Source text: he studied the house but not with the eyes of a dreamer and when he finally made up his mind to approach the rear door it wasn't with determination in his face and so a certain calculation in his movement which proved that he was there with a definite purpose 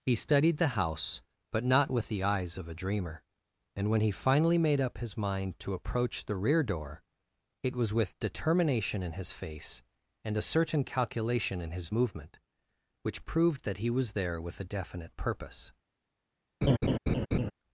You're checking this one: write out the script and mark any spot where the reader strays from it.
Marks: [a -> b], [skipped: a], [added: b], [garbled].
he studied the house but not with the eyes of a dreamer and when he finally made up his mind to approach the rear door it [wasn't -> was] with determination in his face and [skipped: so] a certain calculation in his movement which proved that he was there with a definite purpose